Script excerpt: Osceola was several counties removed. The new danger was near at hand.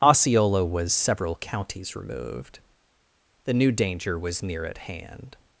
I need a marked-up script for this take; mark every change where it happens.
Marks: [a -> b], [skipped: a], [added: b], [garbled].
Osceola was several counties removed. The new danger was near at hand.